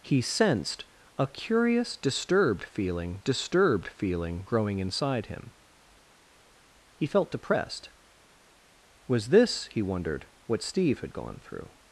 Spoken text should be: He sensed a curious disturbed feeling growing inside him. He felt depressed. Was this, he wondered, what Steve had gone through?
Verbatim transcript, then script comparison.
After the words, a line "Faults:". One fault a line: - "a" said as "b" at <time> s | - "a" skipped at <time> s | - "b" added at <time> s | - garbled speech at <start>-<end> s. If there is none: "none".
He sensed a curious disturbed feeling disturbed feeling growing inside him. He felt depressed. Was this, he wondered, what Steve had gone through?
Faults:
- "disturbed feeling" added at 3.2 s